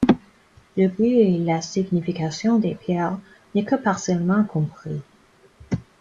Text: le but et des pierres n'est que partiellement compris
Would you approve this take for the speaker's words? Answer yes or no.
no